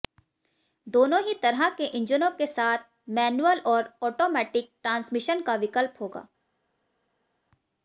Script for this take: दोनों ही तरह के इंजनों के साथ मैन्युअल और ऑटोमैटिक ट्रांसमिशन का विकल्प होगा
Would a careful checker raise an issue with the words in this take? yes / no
no